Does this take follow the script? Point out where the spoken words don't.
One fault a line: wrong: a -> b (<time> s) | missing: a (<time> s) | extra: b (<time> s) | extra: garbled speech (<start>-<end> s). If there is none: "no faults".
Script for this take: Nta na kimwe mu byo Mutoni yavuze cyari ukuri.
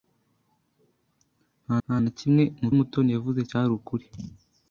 extra: nta (1.8 s)
missing: byo (2.7 s)